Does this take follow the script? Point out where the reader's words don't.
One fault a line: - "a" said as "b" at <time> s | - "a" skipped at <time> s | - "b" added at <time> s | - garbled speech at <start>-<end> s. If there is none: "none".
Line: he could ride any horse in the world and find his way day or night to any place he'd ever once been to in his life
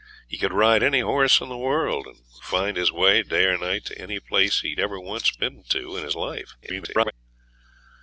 - garbled speech at 6.6-7.1 s